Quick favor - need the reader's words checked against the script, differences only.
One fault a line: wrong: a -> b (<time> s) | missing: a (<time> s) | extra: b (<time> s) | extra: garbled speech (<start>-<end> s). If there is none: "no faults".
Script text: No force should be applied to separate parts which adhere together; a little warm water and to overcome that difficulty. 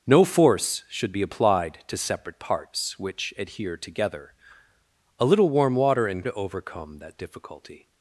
no faults